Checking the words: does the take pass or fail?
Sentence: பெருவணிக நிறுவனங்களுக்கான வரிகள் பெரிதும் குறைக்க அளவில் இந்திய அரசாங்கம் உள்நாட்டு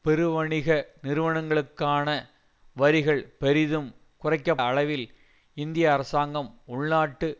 pass